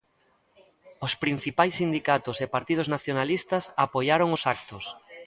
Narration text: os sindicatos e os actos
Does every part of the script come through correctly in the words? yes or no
no